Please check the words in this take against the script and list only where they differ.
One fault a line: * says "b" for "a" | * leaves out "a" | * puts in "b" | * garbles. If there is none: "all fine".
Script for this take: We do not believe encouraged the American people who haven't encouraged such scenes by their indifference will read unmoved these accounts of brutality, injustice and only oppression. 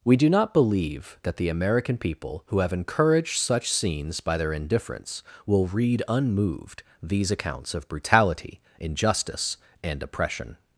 * says "that" for "encouraged"
* says "have" for "haven't"
* leaves out "only"